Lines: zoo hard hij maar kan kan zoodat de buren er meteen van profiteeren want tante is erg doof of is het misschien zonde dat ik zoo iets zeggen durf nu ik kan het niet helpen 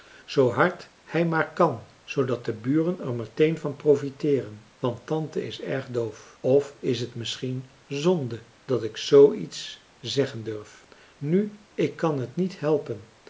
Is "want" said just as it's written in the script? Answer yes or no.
yes